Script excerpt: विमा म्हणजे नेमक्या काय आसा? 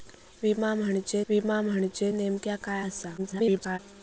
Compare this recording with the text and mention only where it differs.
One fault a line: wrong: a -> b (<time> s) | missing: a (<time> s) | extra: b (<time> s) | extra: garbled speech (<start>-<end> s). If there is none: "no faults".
extra: विमा म्हणजे (1.3 s)
extra: garbled speech (3.2-3.8 s)